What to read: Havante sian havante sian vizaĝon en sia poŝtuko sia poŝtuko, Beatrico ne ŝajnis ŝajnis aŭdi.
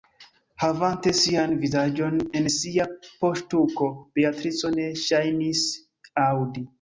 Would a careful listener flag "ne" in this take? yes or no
no